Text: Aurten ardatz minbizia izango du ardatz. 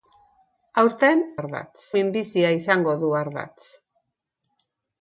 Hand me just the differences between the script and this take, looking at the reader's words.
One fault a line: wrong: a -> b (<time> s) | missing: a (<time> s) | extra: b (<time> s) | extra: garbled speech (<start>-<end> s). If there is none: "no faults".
no faults